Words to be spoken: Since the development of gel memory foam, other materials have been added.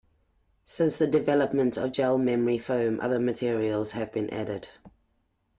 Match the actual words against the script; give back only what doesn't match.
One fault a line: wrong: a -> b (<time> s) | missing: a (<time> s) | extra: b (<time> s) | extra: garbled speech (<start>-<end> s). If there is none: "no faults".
no faults